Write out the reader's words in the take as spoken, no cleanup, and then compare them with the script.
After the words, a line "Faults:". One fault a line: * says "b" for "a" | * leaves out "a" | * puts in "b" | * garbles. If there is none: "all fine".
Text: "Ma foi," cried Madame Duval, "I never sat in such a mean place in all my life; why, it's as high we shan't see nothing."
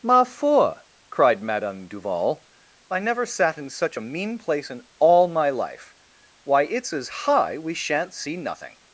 "Ma foi," cried Madame Duval, "I never sat in such a mean place in all my life; why, it's as high we shan't see nothing."
Faults:
all fine